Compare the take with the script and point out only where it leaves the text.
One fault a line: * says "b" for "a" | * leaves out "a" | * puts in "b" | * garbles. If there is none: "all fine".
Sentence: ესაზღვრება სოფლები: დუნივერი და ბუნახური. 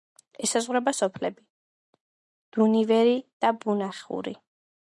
all fine